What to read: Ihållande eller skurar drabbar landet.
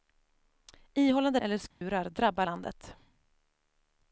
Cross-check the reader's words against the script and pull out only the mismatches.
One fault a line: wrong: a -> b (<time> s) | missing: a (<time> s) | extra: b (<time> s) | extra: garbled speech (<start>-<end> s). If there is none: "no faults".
no faults